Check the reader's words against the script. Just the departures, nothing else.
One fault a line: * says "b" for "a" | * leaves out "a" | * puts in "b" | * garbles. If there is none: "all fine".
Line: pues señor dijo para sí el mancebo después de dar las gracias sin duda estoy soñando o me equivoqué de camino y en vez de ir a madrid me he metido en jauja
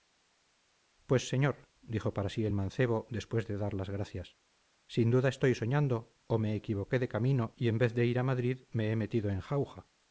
all fine